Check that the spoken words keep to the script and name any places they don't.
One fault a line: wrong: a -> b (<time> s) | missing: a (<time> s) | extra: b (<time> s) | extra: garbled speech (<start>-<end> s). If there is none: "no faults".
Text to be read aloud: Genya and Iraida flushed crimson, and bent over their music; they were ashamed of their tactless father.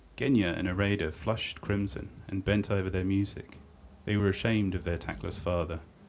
no faults